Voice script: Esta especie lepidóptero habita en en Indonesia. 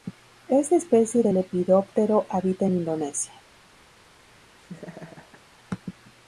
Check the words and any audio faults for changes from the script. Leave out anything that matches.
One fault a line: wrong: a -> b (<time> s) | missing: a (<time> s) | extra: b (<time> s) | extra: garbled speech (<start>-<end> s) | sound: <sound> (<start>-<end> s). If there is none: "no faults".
extra: de (1.2 s)
missing: en (2.8 s)
sound: laugh (4.6-5.4 s)